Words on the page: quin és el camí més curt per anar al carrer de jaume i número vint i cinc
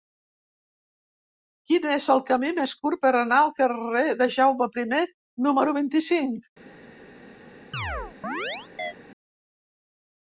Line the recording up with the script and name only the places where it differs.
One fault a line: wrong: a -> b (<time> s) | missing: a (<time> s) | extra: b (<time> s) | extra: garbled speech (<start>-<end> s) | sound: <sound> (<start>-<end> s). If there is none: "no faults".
sound: chirp (7.7-8.9 s)